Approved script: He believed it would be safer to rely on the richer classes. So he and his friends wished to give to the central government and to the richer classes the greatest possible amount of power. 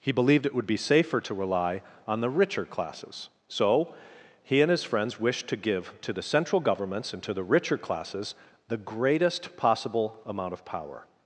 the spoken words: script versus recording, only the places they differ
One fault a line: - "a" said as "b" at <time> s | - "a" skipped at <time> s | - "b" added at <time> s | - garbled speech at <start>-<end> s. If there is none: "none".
- "government" said as "governments" at 6.6 s